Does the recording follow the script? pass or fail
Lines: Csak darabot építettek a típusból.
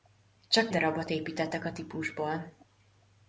pass